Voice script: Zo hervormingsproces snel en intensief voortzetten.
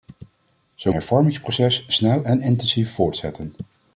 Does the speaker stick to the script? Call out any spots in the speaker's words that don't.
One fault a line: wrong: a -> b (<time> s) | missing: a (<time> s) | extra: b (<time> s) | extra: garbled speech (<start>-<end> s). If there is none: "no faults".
no faults